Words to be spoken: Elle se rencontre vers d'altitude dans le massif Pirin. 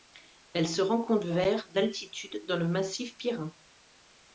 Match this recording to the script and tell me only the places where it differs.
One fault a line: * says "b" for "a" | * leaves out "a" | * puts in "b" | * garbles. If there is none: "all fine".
all fine